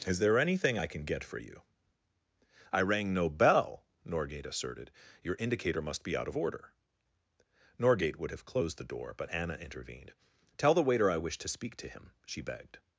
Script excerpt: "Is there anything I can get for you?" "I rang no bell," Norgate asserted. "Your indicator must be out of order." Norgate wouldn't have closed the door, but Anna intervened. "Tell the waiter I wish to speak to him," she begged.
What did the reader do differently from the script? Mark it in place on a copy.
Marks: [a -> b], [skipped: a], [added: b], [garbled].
"Is there anything I can get for you?" "I rang no bell," Norgate asserted. "Your indicator must be out of order." Norgate [wouldn't -> would] have closed the door, but Anna intervened. "Tell the waiter I wish to speak to him," she begged.